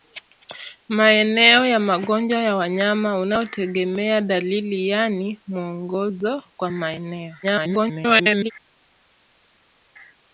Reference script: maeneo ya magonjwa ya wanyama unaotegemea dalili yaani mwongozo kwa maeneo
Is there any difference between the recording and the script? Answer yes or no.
yes